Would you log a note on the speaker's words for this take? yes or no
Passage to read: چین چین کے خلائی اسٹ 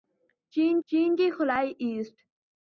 no